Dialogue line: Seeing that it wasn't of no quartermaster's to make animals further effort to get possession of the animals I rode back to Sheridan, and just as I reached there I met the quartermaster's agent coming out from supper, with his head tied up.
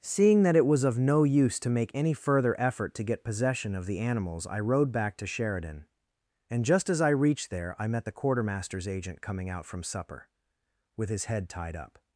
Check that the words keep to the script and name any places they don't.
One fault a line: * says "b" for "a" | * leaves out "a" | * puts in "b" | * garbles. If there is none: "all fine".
* says "was" for "wasn't"
* says "use" for "quartermaster's"
* says "any" for "animals"